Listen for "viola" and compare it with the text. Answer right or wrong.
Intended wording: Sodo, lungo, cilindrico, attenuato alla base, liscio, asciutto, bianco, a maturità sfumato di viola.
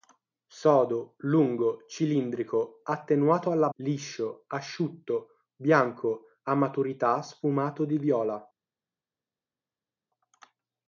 right